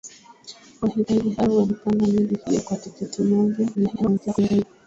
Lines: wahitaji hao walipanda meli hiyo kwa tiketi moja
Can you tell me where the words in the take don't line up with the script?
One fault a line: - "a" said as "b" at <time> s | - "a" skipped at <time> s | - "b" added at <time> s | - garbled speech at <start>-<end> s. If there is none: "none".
- garbled speech at 3.7-4.6 s